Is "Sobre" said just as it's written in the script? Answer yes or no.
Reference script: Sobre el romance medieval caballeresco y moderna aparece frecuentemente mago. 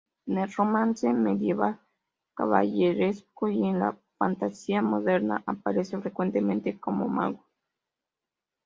no